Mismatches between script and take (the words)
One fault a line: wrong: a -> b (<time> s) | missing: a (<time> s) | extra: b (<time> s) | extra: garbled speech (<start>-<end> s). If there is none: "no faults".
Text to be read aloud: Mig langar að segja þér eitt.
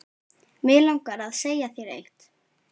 no faults